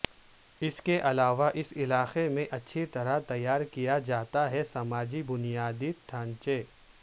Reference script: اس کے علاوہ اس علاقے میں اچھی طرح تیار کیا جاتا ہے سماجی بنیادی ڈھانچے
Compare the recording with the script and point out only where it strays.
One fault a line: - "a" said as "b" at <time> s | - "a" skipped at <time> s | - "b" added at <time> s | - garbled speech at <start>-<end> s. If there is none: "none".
none